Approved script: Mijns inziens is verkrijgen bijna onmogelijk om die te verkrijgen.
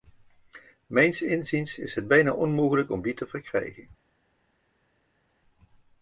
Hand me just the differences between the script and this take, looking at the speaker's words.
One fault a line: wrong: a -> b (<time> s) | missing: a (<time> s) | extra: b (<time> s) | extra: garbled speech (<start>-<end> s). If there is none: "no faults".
wrong: verkrijgen -> het (1.9 s)